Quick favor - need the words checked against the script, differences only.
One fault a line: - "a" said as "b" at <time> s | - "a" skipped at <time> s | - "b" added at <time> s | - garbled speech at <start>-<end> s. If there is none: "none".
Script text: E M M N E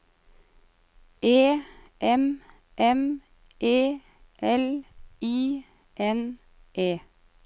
- "E L I" added at 3.6 s